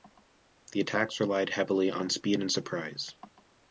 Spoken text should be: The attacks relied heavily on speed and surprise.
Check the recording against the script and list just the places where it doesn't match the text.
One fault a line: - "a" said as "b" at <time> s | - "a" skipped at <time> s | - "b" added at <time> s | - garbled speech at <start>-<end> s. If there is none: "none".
none